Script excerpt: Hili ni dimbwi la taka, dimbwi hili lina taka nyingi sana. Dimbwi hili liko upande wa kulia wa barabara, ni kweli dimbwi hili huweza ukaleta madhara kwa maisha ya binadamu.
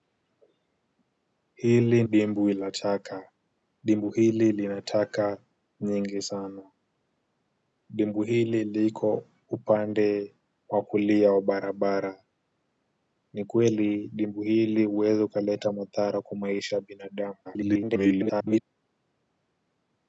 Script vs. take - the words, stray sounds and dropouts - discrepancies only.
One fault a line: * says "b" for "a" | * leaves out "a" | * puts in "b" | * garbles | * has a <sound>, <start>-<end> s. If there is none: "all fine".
* leaves out "ni"
* garbles